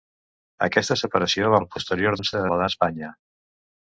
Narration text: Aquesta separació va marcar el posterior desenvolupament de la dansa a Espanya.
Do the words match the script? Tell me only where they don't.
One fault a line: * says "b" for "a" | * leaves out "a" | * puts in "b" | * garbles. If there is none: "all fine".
* leaves out "marcar"
* says "dansa" for "desenvolupament"
* leaves out "dansa"